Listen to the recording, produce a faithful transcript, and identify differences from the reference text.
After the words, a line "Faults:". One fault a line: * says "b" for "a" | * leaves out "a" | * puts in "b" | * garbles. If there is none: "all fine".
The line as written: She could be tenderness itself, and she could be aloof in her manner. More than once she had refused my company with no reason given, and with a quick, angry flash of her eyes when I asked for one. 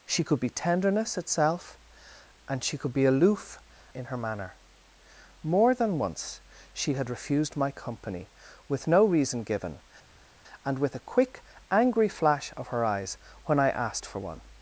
She could be tenderness itself, and she could be aloof in her manner. More than once she had refused my company with no reason given, and with a quick, angry flash of her eyes when I asked for one.
Faults:
all fine